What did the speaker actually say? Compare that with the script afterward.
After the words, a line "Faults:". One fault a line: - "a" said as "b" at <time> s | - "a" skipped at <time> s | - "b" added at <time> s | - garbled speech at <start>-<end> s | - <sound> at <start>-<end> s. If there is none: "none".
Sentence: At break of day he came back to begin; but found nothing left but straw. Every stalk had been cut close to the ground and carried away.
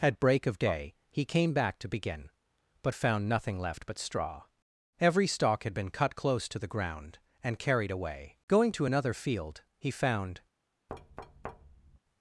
At break of day he came back to begin; but found nothing left but straw. Every stalk had been cut close to the ground and carried away. Going to another field, he found
Faults:
- "Going to another field he found" added at 8.5 s
- thud at 10.9-12.0 s